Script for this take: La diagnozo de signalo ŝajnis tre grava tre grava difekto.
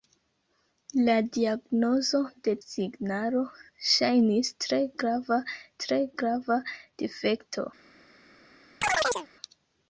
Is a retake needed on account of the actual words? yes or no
no